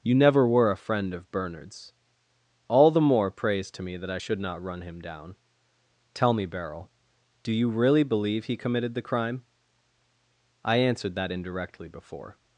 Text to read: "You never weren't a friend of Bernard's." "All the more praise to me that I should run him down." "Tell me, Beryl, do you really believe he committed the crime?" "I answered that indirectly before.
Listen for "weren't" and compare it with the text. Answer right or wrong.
wrong